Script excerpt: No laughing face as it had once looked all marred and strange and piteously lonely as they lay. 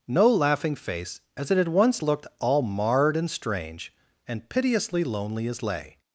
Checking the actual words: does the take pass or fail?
fail